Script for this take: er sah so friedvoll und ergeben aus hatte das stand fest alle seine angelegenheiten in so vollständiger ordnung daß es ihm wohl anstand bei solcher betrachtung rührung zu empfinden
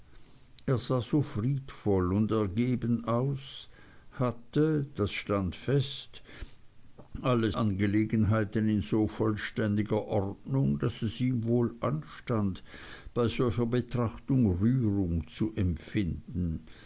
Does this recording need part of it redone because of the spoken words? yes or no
yes